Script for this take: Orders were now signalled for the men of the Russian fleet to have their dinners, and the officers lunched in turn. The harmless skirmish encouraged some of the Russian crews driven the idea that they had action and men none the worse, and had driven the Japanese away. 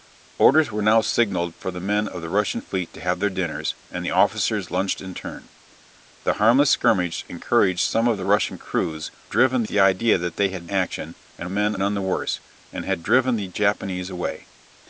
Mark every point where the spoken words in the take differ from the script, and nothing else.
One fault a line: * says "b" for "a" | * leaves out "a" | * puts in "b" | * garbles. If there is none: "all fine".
all fine